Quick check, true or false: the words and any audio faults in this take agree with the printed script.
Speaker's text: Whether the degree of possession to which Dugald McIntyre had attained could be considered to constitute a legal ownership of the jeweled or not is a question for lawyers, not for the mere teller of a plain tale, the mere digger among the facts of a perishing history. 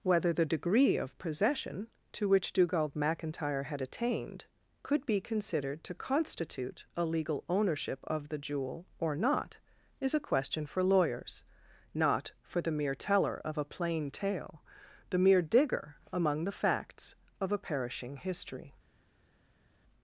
false